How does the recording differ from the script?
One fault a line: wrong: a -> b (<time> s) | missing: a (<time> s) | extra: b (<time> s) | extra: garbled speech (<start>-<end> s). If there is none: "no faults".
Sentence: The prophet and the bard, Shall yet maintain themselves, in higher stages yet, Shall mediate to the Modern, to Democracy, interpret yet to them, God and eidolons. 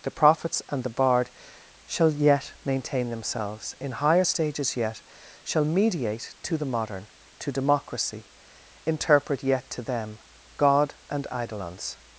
wrong: prophet -> prophets (0.1 s)